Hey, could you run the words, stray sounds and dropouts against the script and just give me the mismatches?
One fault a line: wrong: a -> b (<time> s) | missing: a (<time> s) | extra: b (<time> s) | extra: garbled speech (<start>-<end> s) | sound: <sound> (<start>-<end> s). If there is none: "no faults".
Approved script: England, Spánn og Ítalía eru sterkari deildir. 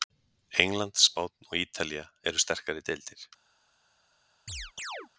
sound: chirp (4.5-5.1 s)